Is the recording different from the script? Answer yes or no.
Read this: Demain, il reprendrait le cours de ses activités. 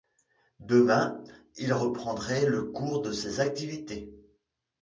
no